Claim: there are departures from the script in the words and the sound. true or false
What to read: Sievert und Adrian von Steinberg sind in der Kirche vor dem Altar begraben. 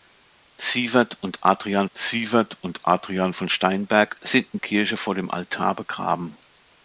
true